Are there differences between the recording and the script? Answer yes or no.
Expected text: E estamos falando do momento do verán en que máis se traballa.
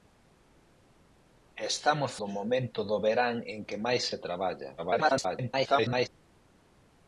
yes